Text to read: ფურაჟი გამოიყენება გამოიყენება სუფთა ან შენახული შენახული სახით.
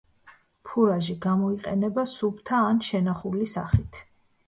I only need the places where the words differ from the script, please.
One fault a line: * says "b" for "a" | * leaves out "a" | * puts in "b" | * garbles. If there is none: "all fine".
* leaves out "გამოიყენება"
* leaves out "შენახული"